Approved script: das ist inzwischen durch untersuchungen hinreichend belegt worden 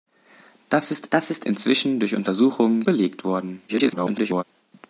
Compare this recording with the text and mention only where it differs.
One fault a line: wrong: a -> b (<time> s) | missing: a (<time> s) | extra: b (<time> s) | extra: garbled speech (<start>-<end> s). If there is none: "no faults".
extra: das ist (1.1 s)
missing: hinreichend (2.8 s)
extra: garbled speech (3.7-4.4 s)